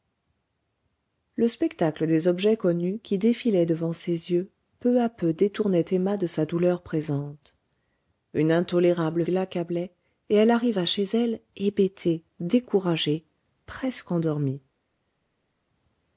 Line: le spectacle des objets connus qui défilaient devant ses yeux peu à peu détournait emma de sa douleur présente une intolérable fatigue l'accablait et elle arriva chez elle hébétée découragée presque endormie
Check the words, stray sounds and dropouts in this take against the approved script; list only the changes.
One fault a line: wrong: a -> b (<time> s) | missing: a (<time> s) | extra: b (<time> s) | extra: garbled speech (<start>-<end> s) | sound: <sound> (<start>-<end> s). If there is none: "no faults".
missing: fatigue (9.3 s)